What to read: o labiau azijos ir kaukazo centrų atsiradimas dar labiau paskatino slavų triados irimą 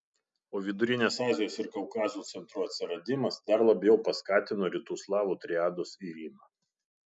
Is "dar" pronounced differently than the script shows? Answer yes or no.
no